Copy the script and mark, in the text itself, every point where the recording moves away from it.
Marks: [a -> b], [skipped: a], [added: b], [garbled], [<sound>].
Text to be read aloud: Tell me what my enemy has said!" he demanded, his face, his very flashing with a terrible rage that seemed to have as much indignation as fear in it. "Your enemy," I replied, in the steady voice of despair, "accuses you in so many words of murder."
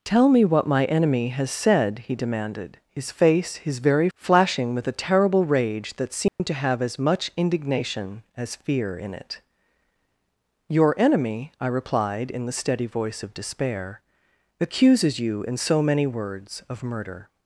Tell me what my enemy has said!" he demanded, his face, his very flashing with a terrible rage that seemed [dropout] to have as much indignation as fear in it. "Your enemy," I replied, in the steady voice of despair, "accuses you in so many words of murder."